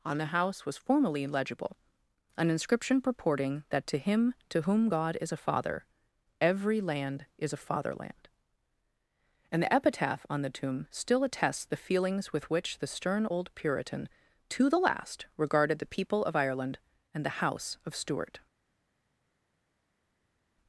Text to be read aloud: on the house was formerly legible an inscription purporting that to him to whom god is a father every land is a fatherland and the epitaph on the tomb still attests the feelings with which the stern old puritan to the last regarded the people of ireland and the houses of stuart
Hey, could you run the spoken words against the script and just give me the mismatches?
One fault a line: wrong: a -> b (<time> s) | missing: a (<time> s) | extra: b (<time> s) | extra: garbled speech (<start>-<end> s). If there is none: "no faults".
wrong: houses -> house (17.4 s)